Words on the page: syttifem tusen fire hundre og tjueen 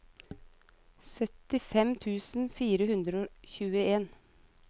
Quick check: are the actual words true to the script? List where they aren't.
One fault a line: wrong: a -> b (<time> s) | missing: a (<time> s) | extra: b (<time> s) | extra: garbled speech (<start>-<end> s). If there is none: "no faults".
no faults